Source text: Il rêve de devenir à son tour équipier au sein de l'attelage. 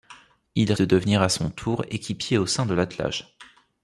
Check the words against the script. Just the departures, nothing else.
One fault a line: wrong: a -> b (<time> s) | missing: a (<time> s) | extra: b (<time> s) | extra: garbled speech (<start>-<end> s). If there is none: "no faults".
missing: rêve (0.7 s)